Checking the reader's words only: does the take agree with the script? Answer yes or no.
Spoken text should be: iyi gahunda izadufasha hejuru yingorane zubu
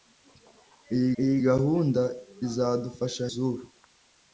no